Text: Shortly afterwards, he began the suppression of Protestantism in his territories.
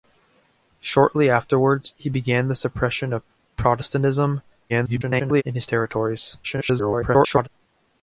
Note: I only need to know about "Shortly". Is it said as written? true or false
true